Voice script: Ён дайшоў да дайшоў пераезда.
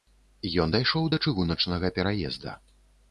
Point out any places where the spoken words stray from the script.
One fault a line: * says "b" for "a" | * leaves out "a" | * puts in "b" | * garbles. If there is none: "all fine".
* says "чыгуначнага" for "дайшоў"